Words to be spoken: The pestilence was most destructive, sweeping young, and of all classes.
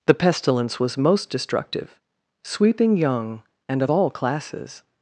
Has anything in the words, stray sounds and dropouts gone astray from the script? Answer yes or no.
no